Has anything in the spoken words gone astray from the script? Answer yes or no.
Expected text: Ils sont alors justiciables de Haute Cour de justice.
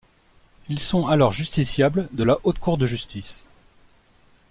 yes